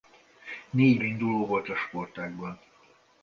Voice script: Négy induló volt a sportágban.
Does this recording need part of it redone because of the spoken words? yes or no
no